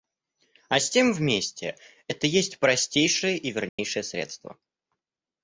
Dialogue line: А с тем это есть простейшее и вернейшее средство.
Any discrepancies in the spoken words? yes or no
yes